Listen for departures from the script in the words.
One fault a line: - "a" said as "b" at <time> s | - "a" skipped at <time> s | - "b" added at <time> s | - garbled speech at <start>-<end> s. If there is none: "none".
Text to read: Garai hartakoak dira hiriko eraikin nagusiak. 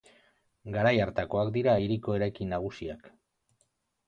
none